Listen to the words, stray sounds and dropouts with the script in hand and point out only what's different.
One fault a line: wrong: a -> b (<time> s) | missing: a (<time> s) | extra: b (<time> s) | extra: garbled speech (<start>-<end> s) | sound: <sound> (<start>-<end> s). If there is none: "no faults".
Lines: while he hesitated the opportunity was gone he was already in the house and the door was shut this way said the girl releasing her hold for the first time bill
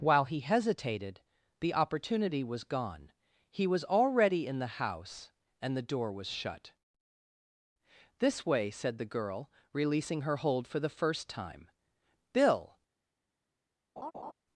sound: laugh (14.0-14.3 s)